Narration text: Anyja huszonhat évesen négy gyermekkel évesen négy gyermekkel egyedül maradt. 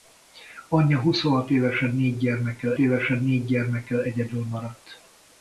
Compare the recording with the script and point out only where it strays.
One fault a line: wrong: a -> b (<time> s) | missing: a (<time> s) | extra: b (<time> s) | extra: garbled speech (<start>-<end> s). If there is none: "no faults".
no faults